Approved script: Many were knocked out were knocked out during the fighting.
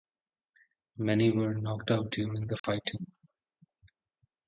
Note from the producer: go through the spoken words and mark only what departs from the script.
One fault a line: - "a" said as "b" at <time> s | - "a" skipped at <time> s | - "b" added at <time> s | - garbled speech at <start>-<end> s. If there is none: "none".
- "were knocked out" skipped at 2.1 s